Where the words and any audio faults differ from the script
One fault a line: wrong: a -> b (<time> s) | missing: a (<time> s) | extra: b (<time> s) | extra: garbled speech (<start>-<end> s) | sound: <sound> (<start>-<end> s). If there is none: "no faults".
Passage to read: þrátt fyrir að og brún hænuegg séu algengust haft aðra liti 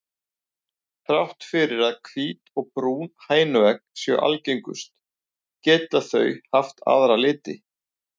extra: hvít (2.1 s)
extra: geta þau (5.7 s)